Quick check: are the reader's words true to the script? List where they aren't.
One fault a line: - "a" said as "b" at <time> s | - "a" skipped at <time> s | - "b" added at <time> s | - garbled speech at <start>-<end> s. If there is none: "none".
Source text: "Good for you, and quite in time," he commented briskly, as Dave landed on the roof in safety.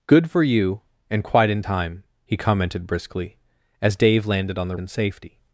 - "roof" skipped at 4.8 s